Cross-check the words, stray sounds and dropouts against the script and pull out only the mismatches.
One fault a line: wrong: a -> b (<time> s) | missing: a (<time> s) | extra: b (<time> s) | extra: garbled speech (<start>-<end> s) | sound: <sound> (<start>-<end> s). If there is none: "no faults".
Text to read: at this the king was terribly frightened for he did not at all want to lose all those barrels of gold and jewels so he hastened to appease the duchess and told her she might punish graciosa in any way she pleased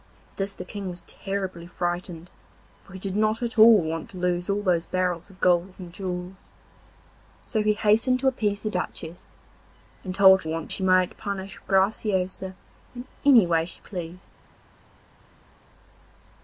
wrong: her -> want (10.4 s)